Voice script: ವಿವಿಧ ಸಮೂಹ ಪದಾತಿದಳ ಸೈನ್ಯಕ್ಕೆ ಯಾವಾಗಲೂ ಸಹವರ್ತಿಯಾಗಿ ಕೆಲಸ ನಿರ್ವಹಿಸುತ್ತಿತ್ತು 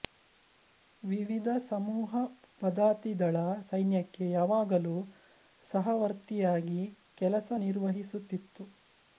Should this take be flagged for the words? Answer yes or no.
no